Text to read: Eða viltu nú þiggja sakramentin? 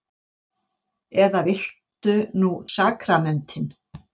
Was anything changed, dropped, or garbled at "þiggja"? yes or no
yes